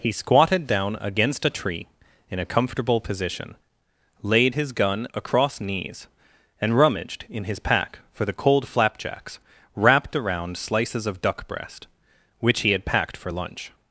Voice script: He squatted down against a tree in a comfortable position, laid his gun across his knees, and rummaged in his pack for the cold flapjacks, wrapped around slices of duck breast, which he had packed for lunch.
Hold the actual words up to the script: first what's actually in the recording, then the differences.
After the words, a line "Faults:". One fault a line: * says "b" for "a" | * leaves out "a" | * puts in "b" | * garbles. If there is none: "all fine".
He squatted down against a tree in a comfortable position, laid his gun across knees, and rummaged in his pack for the cold flapjacks, wrapped around slices of duck breast, which he had packed for lunch.
Faults:
* leaves out "his"